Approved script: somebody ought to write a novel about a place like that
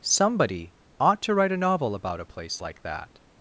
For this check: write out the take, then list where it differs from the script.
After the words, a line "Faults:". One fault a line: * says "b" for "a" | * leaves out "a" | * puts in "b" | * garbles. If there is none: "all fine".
somebody ought to write a novel about a place like that
Faults:
all fine